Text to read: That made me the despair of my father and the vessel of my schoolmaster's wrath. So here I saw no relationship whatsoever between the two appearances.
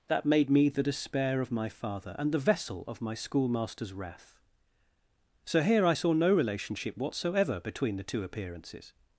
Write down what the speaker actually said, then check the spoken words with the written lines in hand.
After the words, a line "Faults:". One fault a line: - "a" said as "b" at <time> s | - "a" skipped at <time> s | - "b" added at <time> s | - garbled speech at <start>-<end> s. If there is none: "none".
That made me the despair of my father and the vessel of my schoolmaster's wrath. So here I saw no relationship whatsoever between the two appearances.
Faults:
none